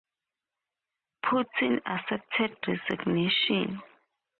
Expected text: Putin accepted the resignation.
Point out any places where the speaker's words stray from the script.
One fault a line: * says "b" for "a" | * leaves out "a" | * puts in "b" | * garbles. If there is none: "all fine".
* leaves out "the"